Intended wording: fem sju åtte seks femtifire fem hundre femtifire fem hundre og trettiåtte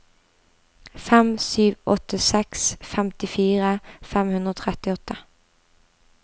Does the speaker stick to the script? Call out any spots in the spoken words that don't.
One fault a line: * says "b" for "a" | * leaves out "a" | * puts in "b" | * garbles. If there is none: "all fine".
* leaves out "femtifire fem hundre"